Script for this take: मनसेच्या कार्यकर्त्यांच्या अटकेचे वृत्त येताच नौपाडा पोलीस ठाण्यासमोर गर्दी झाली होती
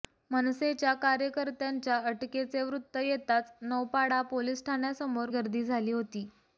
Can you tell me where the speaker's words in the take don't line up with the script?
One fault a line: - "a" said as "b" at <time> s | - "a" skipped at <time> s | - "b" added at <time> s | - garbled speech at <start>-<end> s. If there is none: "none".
none